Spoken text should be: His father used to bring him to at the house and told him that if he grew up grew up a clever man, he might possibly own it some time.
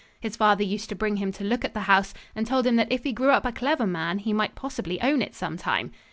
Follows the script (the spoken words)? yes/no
no